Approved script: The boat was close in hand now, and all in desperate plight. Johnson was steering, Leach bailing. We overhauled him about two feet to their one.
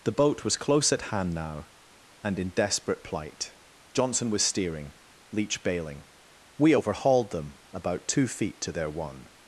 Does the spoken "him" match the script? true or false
false